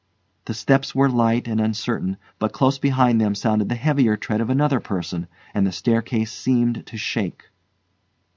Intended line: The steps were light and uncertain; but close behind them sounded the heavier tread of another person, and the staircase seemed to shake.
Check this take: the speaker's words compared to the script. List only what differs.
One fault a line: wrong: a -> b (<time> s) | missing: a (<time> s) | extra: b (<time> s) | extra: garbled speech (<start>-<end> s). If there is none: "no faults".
no faults